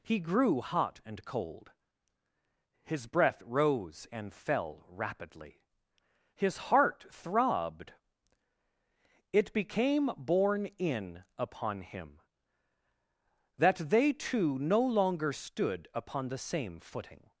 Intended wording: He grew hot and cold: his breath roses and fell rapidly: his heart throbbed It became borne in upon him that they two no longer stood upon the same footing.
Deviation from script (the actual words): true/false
true